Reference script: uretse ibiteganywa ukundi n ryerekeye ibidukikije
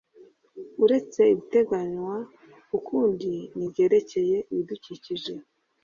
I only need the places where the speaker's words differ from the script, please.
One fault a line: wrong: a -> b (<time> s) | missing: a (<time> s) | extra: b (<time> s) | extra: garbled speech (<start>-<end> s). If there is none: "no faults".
no faults